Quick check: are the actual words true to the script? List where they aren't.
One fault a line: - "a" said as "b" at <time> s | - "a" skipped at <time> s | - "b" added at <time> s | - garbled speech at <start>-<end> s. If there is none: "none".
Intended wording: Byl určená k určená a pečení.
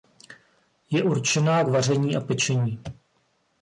- "Byl" said as "Je" at 0.9 s
- "určená" said as "vaření" at 1.7 s